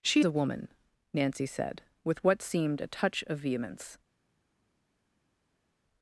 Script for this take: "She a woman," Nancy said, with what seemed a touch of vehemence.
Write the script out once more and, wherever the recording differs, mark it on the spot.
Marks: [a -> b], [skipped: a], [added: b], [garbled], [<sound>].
"She a woman," Nancy said, with what seemed a touch of vehemence.